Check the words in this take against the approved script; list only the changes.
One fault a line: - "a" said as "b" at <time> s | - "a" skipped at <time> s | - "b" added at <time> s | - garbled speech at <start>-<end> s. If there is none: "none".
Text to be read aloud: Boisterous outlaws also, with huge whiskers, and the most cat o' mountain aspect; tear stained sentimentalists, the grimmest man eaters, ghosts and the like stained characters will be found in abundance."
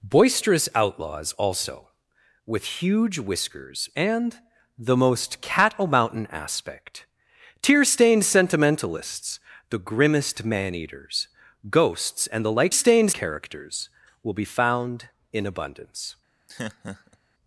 none